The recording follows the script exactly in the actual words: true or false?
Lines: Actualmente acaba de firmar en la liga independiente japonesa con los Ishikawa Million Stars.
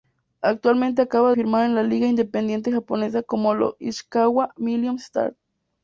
false